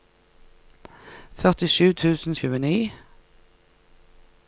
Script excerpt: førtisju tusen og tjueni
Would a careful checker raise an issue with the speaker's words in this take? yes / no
no